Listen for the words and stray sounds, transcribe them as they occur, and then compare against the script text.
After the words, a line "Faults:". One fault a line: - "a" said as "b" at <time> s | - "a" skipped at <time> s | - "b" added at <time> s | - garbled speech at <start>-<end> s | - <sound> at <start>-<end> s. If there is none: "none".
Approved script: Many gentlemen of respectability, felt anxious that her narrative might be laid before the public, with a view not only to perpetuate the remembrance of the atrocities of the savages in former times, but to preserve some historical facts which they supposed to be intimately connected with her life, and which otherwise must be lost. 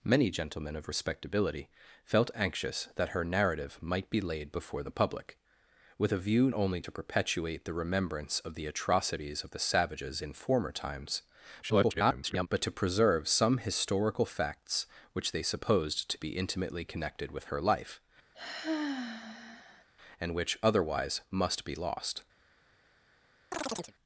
Many gentlemen of respectability, felt anxious that her narrative might be laid before the public, with a view only to perpetuate the remembrance of the atrocities of the savages in former times, [garbled] but to preserve some historical facts which they supposed to be intimately connected with her life, and which otherwise must be lost.
Faults:
- "not" skipped at 6.5 s
- garbled speech at 11.6-12.5 s
- sigh at 18.3-19.8 s
- chirp at 23.5-23.9 s